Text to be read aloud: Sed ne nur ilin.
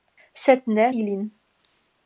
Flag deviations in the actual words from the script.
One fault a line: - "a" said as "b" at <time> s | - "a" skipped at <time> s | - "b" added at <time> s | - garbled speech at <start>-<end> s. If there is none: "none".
- "nur" skipped at 0.9 s